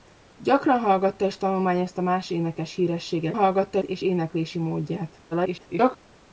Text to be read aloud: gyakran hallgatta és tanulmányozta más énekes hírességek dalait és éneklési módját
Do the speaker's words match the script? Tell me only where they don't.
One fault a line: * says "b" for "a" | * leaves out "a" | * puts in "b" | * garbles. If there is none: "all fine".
* says "hallgatta" for "dalait"
* garbles